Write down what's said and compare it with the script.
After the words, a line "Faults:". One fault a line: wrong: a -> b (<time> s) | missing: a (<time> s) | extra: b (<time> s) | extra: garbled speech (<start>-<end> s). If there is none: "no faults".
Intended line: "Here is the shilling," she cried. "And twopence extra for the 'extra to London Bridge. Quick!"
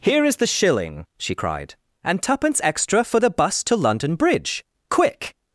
"Here is the shilling," she cried. "And twopence extra for the 'bus to London Bridge. Quick!"
Faults:
wrong: extra -> bus (3.3 s)